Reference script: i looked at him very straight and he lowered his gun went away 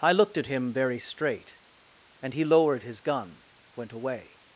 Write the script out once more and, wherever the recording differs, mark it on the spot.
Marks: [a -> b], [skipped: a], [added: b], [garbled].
i looked at him very straight and he lowered his gun went away